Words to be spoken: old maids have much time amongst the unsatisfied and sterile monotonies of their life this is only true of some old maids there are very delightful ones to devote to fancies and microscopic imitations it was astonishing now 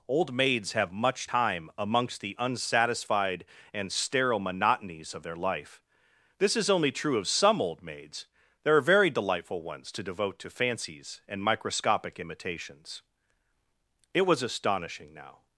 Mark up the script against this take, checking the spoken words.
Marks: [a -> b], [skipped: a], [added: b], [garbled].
old maids have much time amongst the unsatisfied and sterile monotonies of their life this is only true of some old maids there are very delightful ones to devote to fancies and microscopic imitations it was astonishing now